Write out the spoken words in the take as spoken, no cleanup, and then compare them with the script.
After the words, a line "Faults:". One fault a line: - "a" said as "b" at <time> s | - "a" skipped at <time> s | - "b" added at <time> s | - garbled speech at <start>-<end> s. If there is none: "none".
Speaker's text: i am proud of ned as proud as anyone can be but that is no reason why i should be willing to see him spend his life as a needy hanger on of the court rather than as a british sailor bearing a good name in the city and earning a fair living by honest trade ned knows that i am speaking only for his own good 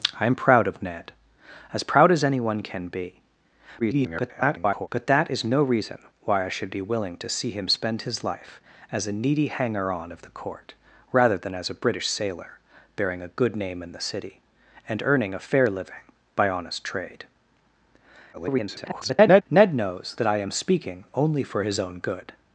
i am proud of ned as proud as anyone can be [garbled] but that is no reason why i should be willing to see him spend his life as a needy hanger on of the court rather than as a british sailor bearing a good name in the city and earning a fair living by honest trade [garbled] ned knows that i am speaking only for his own good
Faults:
- garbled speech at 3.8-4.9 s
- garbled speech at 18.3-19.4 s